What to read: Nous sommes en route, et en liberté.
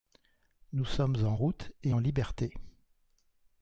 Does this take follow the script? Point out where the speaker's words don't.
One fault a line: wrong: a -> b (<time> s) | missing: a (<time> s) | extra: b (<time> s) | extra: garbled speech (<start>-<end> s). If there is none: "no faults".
no faults